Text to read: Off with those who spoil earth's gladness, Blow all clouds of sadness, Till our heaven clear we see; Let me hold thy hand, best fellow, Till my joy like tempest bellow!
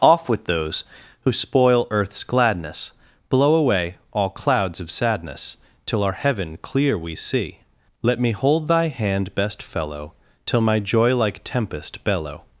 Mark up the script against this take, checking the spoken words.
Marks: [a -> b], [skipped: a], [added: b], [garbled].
Off with those who spoil earth's gladness, Blow [added: away] all clouds of sadness, Till our heaven clear we see; Let me hold thy hand, best fellow, Till my joy like tempest bellow!